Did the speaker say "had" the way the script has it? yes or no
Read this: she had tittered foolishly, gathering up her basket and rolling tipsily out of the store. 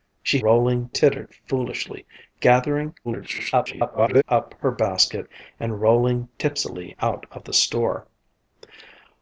no